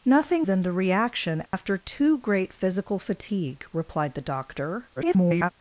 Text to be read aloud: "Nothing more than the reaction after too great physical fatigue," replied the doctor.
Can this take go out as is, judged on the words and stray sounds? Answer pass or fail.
fail